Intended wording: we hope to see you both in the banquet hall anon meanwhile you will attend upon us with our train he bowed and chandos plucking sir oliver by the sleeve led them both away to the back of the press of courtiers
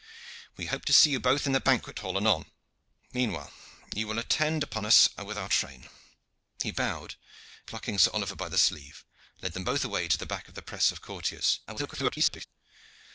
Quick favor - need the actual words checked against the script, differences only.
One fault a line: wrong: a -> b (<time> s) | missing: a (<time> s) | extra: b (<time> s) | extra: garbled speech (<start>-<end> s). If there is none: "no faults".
missing: and chandos (7.2 s)
extra: garbled speech (11.7-12.5 s)